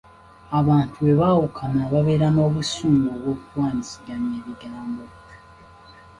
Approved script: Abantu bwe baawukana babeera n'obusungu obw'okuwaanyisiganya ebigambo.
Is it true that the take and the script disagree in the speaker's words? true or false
false